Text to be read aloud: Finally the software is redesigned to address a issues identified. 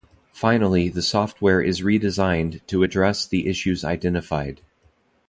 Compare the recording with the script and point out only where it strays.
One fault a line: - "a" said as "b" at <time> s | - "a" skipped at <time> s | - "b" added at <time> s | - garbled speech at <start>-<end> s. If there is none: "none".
- "a" said as "the" at 3.3 s